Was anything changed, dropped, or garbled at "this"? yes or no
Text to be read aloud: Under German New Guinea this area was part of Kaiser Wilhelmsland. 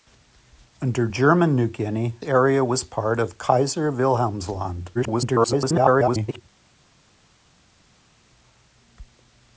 yes